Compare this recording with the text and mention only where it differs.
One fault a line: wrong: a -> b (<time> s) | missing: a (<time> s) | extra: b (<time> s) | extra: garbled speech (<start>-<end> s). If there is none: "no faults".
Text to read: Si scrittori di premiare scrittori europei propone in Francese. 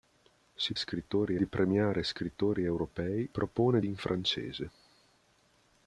no faults